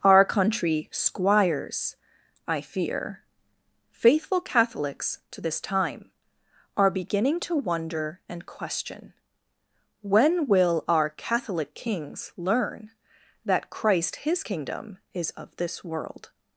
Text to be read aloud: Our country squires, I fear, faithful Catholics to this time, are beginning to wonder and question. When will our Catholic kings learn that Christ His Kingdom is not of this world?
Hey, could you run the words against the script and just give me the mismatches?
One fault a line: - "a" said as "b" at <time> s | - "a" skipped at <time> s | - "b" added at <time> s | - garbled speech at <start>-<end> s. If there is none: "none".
- "not" skipped at 15.3 s